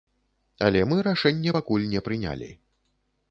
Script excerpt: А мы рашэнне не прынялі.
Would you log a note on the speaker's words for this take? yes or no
yes